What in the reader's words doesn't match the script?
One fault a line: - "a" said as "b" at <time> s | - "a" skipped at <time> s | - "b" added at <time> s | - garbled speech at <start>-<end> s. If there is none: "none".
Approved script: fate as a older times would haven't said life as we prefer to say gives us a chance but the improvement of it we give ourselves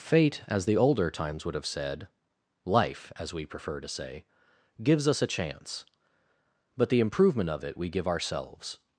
- "a" said as "the" at 0.6 s
- "haven't" said as "have" at 1.5 s